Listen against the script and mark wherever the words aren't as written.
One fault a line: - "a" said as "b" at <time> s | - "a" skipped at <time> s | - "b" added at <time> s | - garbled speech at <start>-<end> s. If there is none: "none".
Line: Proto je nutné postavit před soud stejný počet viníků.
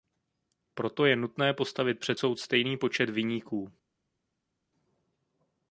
none